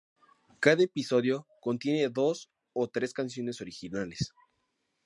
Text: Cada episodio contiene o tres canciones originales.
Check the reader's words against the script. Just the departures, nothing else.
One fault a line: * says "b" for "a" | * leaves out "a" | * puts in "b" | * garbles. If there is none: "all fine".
* puts in "dos"